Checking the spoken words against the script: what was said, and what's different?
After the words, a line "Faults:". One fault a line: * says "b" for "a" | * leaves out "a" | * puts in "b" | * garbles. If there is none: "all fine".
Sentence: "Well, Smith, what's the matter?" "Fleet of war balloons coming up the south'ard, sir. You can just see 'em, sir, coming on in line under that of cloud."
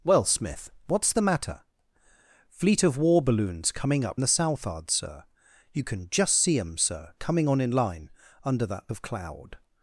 "Well, Smith, what's the matter?" "Fleet of war balloons coming up the south'ard, sir. You can just see 'em, sir, coming on in line under that of cloud."
Faults:
all fine